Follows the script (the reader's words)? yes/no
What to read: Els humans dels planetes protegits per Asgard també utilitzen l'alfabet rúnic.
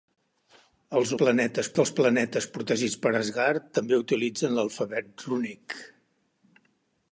no